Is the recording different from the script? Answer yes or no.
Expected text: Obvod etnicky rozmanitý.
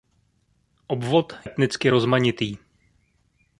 no